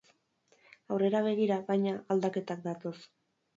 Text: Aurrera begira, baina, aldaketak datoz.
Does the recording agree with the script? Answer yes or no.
yes